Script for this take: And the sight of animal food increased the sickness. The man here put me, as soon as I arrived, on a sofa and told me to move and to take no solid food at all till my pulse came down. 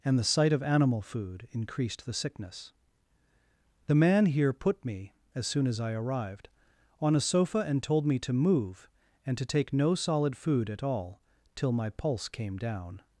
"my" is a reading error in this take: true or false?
false